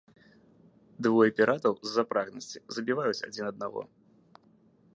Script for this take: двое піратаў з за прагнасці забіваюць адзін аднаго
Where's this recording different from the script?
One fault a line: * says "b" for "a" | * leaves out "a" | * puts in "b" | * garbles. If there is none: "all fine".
all fine